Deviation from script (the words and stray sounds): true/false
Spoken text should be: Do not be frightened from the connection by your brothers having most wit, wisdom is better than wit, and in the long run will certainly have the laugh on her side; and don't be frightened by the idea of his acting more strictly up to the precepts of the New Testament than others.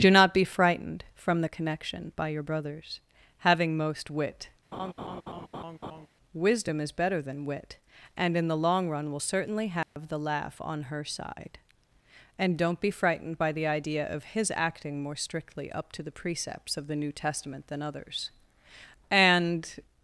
true